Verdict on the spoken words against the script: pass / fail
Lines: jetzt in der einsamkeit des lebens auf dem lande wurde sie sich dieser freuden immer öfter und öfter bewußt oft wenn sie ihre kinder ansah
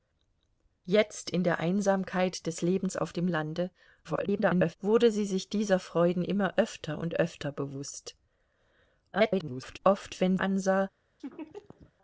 fail